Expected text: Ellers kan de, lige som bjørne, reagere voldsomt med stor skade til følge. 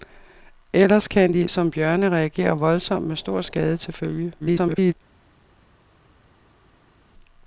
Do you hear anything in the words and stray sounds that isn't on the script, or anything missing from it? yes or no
yes